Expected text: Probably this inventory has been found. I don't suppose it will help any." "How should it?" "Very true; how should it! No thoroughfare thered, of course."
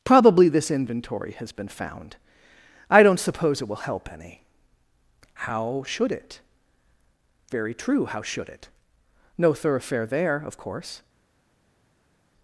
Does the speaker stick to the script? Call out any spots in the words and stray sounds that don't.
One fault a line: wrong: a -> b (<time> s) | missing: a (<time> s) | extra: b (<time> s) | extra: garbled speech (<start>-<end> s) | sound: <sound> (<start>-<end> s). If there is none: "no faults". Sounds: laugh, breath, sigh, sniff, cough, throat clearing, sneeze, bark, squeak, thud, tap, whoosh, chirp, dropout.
wrong: thered -> there (10.1 s)